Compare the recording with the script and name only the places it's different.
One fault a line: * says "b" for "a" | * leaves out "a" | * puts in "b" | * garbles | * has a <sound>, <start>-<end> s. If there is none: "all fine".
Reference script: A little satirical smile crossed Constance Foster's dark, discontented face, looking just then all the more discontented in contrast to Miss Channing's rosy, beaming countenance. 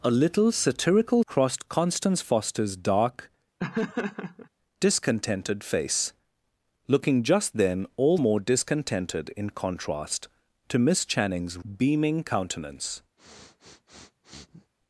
* leaves out "smile"
* has a laugh, 3.6-4.5 s
* leaves out "the"
* leaves out "rosy"
* has a sniff, 13.2-14.7 s